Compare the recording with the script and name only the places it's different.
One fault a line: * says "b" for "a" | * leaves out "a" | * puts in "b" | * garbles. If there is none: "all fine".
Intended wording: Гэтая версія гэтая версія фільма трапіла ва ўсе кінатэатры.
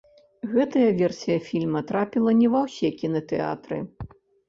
* leaves out "гэтая версія"
* puts in "не"